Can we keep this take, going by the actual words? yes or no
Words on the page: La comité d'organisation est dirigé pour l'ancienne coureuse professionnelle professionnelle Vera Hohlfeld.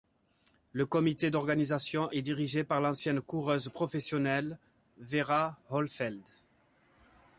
no